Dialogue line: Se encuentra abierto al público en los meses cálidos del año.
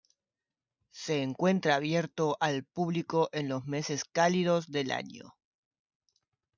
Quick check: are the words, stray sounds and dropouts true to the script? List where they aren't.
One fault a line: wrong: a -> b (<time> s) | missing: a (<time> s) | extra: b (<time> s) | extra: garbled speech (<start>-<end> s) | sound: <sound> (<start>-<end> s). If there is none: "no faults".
no faults